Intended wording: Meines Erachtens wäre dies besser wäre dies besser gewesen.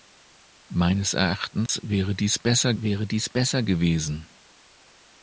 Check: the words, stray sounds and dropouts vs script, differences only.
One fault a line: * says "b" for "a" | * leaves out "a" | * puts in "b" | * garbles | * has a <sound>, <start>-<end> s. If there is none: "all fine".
* has a dropout, 1.7-1.7 s